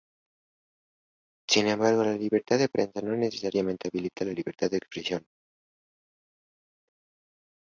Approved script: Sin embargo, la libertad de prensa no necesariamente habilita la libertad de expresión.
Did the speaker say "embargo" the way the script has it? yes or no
yes